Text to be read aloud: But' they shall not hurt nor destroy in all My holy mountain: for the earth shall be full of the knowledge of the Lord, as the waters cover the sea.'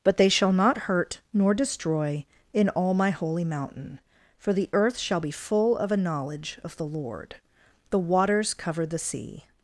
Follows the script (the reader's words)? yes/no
no